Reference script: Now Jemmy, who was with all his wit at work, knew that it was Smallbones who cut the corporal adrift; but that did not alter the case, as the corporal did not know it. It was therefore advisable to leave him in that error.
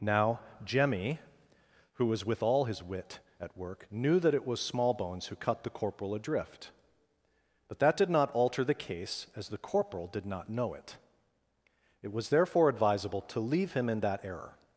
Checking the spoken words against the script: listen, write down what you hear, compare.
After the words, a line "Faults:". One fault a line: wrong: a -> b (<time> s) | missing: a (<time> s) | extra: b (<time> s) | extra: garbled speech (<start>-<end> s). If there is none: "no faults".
Now Jemmy, who was with all his wit at work, knew that it was Smallbones who cut the corporal adrift; but that did not alter the case, as the corporal did not know it. It was therefore advisable to leave him in that error.
Faults:
no faults